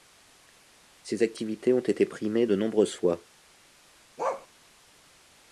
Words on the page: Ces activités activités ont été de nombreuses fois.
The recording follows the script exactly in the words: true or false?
false